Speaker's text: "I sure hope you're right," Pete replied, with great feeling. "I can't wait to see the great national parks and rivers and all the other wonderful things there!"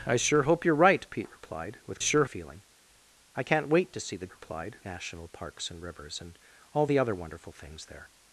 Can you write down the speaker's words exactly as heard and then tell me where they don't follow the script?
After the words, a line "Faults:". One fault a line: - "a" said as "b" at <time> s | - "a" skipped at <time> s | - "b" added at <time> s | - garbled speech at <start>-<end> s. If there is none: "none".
"I sure hope you're right," Pete replied, with sure feeling. "I can't wait to see the replied national parks and rivers and all the other wonderful things there!"
Faults:
- "great" said as "sure" at 2.0 s
- "great" said as "replied" at 4.3 s